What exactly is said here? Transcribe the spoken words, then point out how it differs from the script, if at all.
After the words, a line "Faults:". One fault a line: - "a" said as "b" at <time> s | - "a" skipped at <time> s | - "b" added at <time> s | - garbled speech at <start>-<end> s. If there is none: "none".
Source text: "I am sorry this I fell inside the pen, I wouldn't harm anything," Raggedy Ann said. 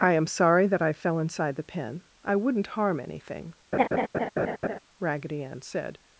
"I am sorry that I fell inside the pen, I wouldn't harm anything," Raggedy Ann said.
Faults:
- "this" said as "that" at 0.7 s